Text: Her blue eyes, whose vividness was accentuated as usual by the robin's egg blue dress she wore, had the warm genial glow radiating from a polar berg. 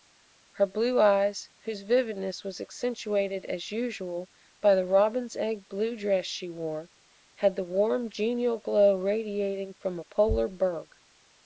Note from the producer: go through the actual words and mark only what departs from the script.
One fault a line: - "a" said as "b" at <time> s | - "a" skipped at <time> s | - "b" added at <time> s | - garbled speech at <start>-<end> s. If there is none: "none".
none